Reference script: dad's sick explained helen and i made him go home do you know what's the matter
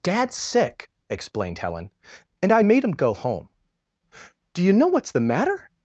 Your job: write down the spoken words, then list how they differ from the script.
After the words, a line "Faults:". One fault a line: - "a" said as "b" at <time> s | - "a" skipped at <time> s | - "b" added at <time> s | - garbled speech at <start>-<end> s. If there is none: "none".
dad's sick explained helen and i made him go home do you know what's the matter
Faults:
none